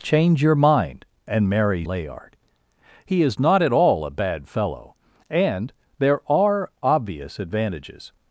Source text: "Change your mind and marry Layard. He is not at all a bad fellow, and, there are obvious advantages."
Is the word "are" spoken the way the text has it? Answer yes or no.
yes